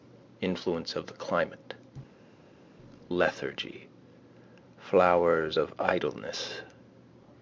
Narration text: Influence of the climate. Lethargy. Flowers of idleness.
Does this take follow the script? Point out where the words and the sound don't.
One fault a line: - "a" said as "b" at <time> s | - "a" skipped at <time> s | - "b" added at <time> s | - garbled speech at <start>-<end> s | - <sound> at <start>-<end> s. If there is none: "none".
none